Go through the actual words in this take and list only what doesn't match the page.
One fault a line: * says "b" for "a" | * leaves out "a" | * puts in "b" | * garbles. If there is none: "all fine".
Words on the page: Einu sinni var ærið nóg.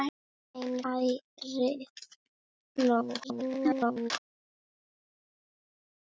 * leaves out "sinni var"
* garbles